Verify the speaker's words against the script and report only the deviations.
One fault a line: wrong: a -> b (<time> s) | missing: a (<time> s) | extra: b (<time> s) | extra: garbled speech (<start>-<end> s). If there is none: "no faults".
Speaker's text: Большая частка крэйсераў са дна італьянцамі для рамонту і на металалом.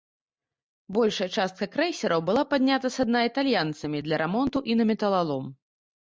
extra: была паднята (2.3 s)